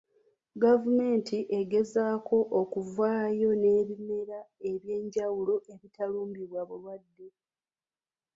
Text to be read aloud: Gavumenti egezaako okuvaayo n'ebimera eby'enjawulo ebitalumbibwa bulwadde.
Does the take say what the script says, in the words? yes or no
yes